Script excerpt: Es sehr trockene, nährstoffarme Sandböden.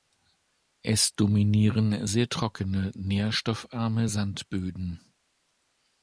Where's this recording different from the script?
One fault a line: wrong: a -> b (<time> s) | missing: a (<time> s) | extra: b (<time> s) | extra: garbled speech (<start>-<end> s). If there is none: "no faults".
extra: dominieren (1.1 s)